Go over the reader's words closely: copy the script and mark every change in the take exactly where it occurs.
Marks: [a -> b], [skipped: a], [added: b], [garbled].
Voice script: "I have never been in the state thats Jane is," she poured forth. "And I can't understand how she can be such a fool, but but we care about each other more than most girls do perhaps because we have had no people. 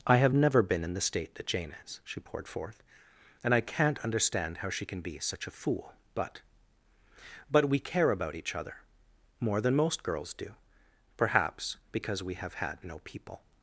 "I have never been in the state [thats -> that] Jane is," she poured forth. "And I can't understand how she can be such a fool, but but we care about each other more than most girls do perhaps because we have had no people.